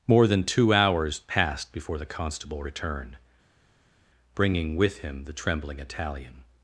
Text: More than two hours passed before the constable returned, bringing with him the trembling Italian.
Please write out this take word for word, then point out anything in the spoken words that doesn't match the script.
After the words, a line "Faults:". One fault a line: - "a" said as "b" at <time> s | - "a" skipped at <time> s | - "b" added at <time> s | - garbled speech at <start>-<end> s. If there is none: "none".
More than two hours passed before the constable returned, bringing with him the trembling Italian.
Faults:
none